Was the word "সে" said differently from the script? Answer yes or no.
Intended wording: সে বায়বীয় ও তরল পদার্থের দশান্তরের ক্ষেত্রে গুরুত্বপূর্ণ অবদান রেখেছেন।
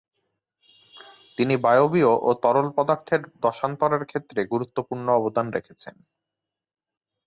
yes